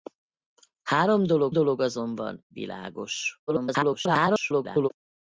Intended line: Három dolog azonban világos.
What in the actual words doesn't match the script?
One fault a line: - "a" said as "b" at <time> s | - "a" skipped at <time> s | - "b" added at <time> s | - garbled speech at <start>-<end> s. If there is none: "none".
- "dolog" added at 1.5 s
- garbled speech at 3.5-4.9 s